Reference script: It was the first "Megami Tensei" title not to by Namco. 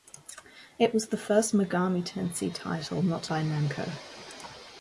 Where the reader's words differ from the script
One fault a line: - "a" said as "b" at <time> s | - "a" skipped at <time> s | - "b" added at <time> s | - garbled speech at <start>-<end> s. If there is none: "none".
none